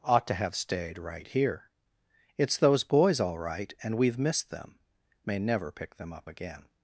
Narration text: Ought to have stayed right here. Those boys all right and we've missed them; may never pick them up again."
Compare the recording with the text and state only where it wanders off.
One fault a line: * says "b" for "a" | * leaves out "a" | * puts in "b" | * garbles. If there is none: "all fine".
* puts in "It's"